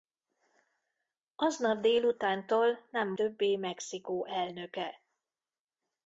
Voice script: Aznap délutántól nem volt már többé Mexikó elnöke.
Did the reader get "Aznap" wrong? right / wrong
right